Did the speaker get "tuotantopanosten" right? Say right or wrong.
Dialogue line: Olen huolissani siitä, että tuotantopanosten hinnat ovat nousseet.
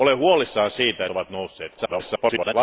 wrong